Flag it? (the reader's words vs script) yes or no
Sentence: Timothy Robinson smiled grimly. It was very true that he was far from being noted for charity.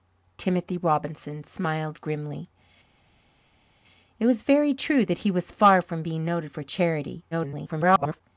yes